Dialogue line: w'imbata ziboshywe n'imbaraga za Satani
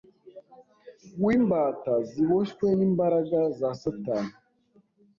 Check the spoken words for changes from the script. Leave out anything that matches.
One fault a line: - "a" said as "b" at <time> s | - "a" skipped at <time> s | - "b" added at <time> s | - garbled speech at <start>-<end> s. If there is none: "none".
none